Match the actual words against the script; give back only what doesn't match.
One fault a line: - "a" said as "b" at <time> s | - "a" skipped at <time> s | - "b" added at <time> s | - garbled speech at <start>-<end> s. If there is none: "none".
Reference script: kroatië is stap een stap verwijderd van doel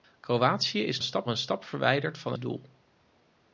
none